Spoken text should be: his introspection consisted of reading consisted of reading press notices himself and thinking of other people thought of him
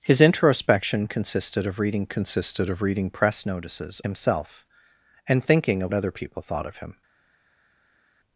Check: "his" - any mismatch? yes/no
no